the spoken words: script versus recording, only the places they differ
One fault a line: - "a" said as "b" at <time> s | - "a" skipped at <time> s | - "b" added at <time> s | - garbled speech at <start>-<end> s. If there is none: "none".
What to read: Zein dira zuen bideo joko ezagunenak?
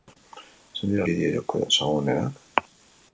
- "zuen" skipped at 1.1 s